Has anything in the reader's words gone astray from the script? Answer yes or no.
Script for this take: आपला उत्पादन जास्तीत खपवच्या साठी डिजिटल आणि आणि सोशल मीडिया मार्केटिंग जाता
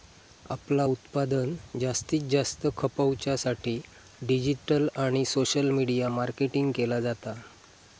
yes